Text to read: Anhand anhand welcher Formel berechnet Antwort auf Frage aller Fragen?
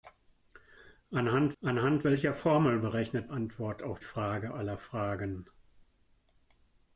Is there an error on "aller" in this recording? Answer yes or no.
no